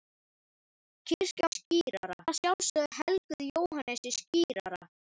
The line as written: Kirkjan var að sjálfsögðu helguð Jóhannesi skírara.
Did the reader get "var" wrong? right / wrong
wrong